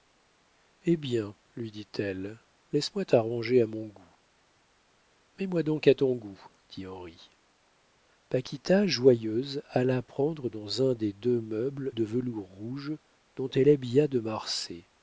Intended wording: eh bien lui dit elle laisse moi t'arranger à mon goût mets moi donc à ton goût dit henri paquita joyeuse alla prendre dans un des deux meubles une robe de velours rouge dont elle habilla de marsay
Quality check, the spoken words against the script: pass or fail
fail